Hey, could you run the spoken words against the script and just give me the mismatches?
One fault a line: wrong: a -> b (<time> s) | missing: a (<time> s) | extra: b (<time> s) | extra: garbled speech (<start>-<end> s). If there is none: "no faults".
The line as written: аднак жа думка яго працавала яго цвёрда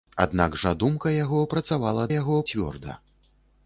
no faults